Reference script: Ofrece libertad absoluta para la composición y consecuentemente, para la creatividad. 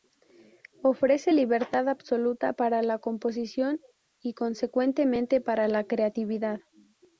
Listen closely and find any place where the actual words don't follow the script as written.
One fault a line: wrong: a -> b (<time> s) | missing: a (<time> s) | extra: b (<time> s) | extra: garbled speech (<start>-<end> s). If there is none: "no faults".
no faults